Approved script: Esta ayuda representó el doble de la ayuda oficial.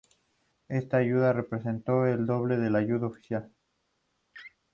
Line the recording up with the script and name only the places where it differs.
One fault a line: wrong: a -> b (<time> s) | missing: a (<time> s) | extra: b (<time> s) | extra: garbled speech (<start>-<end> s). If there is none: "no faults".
no faults